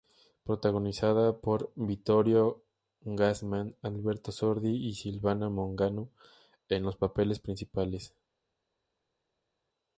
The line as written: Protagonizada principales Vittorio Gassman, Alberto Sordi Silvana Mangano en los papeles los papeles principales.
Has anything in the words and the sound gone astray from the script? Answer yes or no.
yes